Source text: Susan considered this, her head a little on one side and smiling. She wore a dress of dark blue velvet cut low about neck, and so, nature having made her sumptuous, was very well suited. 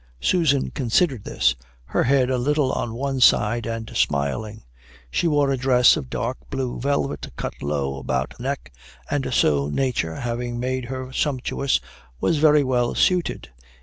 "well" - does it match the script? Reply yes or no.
yes